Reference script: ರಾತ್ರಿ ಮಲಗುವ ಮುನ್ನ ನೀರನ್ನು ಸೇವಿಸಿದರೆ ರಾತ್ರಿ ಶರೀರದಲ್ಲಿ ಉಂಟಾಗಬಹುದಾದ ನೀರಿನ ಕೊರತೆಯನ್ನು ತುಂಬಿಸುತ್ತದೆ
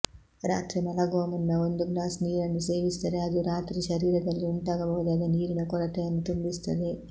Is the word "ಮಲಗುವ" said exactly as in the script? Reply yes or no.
yes